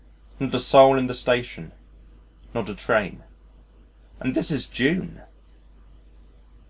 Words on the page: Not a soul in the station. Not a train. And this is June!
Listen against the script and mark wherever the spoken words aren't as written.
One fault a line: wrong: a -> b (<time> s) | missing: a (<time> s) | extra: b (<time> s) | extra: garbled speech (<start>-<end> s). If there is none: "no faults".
no faults